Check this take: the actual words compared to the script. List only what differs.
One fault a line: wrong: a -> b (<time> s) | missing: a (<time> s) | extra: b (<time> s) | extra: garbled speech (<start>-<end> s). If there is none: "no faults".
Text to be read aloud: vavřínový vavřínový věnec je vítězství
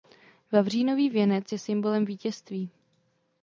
missing: vavřínový (1.1 s)
extra: symbolem (1.6 s)